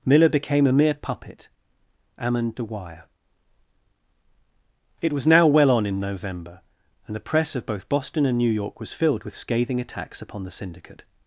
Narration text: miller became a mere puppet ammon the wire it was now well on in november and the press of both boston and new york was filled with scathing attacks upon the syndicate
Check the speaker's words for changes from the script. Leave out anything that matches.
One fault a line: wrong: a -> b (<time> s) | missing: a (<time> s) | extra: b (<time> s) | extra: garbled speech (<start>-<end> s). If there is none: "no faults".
no faults